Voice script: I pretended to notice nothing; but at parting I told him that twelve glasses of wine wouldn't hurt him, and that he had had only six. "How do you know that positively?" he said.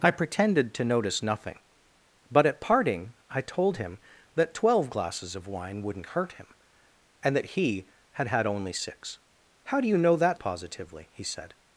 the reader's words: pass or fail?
pass